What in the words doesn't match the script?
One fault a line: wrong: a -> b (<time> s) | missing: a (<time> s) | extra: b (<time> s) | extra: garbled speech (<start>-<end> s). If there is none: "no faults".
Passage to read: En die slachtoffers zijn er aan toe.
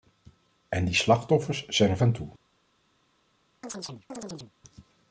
no faults